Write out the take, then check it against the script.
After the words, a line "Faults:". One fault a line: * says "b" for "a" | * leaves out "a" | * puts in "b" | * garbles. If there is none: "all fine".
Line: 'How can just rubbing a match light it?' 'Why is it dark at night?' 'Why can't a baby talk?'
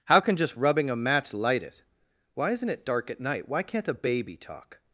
'How can just rubbing a match light it?' 'Why isn't it dark at night?' 'Why can't a baby talk?'
Faults:
* says "isn't" for "is"